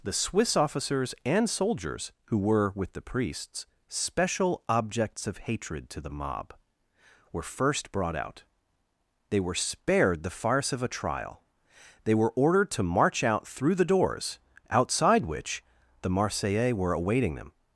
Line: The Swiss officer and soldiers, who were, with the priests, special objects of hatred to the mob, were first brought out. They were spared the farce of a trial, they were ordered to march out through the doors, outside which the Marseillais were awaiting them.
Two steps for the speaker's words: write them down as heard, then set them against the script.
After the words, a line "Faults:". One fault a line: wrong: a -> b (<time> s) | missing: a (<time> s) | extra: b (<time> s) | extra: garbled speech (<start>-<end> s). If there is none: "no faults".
The Swiss officers and soldiers, who were, with the priests, special objects of hatred to the mob, were first brought out. They were spared the farce of a trial, they were ordered to march out through the doors, outside which the Marseillais were awaiting them.
Faults:
wrong: officer -> officers (0.6 s)